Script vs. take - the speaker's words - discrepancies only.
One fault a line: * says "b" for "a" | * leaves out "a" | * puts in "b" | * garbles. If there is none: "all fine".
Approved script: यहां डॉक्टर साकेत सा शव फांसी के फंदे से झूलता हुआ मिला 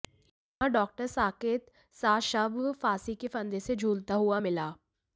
all fine